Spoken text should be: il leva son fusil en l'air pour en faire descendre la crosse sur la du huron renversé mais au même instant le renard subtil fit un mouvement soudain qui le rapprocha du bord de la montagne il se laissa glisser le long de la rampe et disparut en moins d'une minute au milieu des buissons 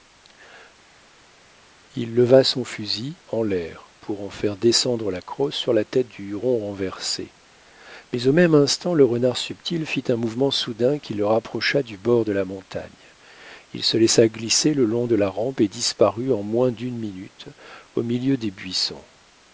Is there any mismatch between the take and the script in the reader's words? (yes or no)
yes